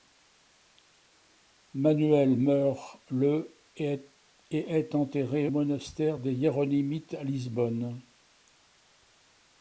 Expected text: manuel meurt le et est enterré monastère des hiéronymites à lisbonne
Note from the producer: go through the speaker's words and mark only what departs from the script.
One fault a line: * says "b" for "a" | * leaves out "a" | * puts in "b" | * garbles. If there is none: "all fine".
all fine